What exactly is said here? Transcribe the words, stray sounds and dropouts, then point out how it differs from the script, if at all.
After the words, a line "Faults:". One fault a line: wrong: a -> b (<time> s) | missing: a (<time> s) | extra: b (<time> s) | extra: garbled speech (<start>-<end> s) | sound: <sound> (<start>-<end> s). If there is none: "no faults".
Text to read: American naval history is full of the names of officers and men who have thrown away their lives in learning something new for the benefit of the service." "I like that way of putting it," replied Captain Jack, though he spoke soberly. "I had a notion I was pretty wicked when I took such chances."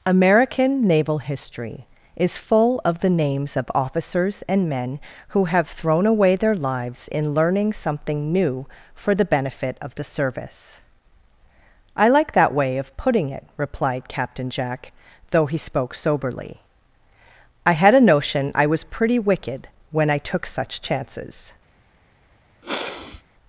American naval history is full of the names of officers and men who have thrown away their lives in learning something new for the benefit of the service." "I like that way of putting it," replied Captain Jack, though he spoke soberly. "I had a notion I was pretty wicked when I took such chances."
Faults:
sound: sniff (22.6-23.2 s)